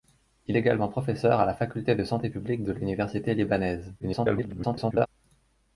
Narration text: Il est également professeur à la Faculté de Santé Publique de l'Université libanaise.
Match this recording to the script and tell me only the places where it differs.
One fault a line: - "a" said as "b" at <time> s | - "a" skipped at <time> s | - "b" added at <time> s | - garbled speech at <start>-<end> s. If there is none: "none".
- "est" skipped at 0.6 s
- garbled speech at 4.0-5.1 s